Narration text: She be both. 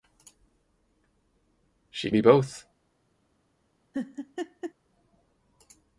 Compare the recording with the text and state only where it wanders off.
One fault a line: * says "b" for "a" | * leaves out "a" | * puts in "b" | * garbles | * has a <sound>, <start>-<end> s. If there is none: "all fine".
* has a laugh, 3.9-4.7 s